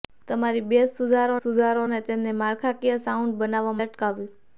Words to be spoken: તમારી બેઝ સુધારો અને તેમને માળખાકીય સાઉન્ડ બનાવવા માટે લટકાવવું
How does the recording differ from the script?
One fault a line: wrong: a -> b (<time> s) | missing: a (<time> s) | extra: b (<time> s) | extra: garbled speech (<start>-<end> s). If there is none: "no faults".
extra: સુધારો (1.4 s)
missing: માટે (3.8 s)